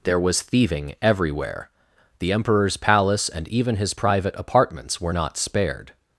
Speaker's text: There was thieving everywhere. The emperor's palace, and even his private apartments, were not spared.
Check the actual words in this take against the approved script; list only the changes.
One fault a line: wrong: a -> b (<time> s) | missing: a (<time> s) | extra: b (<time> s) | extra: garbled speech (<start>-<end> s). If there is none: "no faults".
no faults